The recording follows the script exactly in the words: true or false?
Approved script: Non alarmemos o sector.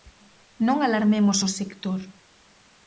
true